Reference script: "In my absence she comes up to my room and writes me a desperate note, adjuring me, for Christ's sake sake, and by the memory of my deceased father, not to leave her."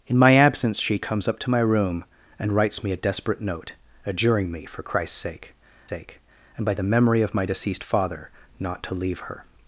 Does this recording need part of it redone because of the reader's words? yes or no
no